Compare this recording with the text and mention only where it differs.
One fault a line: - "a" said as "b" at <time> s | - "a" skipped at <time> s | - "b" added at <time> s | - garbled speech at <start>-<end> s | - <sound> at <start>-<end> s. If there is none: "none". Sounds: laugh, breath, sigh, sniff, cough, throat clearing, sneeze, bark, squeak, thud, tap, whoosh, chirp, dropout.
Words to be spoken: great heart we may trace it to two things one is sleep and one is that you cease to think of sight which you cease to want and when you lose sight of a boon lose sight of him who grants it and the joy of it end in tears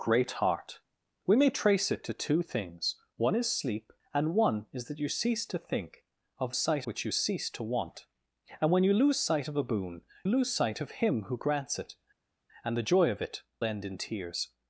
none